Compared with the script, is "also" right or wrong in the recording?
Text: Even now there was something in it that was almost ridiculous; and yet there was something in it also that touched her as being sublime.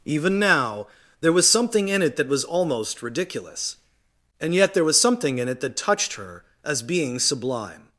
wrong